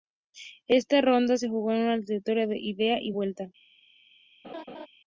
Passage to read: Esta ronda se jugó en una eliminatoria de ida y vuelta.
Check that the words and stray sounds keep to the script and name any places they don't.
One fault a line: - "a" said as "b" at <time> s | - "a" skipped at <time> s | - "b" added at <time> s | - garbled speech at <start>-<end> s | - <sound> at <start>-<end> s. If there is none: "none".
- laugh at 4.4-4.9 s